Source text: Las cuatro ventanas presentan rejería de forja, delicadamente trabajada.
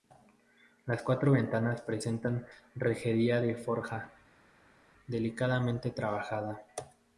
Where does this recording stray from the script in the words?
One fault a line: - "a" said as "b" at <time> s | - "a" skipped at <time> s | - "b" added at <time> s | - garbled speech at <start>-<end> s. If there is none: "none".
none